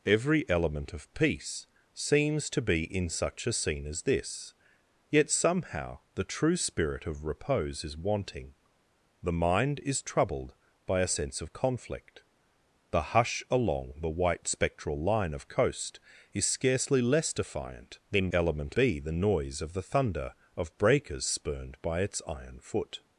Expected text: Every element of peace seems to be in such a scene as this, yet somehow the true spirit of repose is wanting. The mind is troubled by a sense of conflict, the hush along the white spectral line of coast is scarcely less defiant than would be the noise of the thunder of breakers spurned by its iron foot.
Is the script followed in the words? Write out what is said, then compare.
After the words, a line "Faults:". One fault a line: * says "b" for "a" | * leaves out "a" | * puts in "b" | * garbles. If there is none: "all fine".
Every element of peace seems to be in such a scene as this, yet somehow the true spirit of repose is wanting. The mind is troubled by a sense of conflict, the hush along the white spectral line of coast is scarcely less defiant than element be the noise of the thunder of breakers spurned by its iron foot.
Faults:
* says "element" for "would"